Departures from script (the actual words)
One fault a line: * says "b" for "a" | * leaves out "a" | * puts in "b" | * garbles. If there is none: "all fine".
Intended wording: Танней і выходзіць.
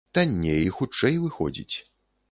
* puts in "хутчэй"